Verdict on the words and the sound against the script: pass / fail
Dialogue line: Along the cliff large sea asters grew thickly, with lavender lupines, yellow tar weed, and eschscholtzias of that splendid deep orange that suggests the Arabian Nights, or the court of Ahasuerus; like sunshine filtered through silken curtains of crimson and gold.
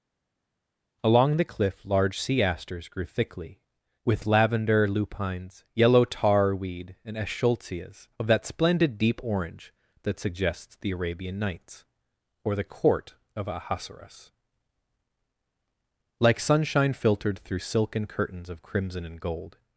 pass